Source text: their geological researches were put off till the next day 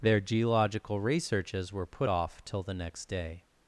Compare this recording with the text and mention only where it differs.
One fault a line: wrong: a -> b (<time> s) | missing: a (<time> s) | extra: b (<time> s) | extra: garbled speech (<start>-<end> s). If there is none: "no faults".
no faults